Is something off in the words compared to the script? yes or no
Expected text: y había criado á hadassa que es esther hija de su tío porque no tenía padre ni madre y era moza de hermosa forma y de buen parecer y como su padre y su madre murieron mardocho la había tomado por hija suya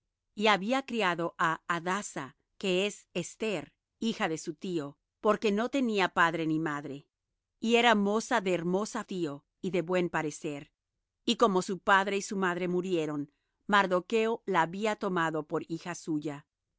yes